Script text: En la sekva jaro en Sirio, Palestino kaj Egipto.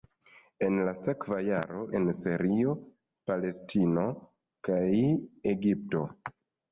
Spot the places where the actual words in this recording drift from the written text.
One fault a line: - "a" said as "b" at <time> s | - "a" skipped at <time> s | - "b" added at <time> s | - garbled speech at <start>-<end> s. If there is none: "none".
none